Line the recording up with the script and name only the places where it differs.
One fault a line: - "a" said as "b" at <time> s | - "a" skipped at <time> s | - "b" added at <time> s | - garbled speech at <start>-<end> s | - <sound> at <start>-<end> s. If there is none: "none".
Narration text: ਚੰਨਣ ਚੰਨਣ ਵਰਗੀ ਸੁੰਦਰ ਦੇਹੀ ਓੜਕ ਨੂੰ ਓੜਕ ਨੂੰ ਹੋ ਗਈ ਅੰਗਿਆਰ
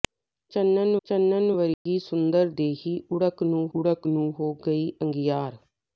- dropout at 1.7-1.9 s